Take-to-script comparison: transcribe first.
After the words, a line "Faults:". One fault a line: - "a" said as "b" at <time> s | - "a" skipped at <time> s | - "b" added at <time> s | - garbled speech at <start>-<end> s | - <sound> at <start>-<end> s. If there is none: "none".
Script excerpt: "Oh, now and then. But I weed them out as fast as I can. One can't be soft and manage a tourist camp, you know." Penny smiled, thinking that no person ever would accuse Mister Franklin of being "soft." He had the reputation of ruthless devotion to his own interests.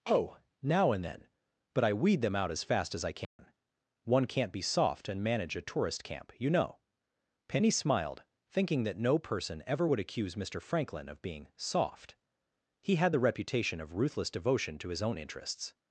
"Oh, now and then. But I weed them out as fast as I can. One can't be soft and manage a tourist camp, you know." Penny smiled, thinking that no person ever would accuse Mister Franklin of being "soft." He had the reputation of ruthless devotion to his own interests.
Faults:
- dropout at 3.2-3.4 s